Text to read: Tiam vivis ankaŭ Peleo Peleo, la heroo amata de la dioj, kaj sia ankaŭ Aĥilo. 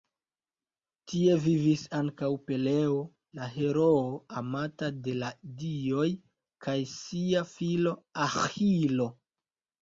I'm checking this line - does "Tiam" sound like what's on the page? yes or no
no